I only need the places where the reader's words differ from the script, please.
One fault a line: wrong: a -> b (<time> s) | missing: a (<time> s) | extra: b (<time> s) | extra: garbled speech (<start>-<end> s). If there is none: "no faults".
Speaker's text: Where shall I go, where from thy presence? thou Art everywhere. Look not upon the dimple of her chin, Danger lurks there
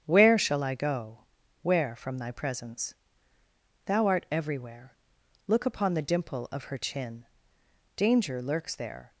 missing: not (5.7 s)